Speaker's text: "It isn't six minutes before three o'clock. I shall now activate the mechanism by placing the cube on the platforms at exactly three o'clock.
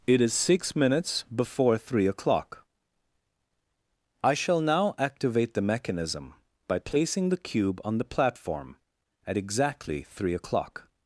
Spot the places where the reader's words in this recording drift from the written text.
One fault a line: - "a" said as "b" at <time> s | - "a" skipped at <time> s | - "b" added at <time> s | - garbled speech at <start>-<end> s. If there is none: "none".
- "isn't" said as "is" at 0.2 s
- "platforms" said as "platform" at 8.0 s